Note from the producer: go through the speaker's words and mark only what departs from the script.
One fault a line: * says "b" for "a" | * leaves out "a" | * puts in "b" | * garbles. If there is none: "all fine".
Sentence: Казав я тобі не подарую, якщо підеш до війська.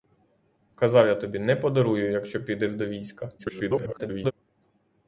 * garbles